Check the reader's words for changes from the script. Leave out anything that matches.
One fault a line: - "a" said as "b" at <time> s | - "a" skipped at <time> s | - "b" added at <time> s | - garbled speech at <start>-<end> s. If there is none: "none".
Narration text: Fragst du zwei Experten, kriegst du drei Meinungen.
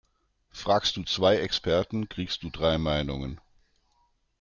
none